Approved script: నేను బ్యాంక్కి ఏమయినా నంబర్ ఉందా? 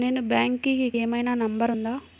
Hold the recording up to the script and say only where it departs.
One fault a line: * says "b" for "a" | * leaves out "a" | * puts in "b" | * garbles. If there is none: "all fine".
all fine